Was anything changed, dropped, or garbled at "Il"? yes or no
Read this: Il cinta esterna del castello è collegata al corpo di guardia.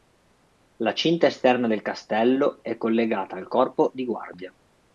yes